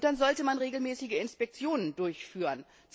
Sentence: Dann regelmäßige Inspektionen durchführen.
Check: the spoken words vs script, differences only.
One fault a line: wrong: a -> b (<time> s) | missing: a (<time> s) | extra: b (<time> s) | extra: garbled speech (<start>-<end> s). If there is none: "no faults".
extra: sollte man (0.2 s)